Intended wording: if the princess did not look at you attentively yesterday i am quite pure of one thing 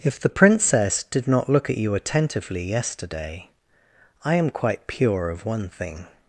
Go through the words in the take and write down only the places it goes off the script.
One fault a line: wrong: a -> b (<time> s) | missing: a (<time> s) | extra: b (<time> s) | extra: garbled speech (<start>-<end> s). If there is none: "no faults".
no faults